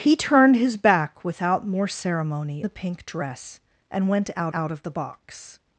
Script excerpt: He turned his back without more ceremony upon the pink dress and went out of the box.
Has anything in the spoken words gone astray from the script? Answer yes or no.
yes